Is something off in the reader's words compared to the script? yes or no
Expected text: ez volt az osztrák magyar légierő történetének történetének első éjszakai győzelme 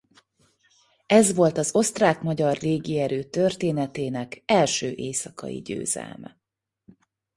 yes